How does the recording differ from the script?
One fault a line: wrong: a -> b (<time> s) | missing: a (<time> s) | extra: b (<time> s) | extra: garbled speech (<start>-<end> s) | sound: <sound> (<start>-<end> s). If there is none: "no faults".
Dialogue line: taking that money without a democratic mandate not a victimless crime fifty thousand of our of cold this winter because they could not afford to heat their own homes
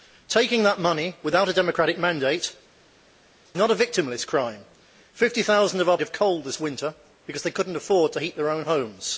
no faults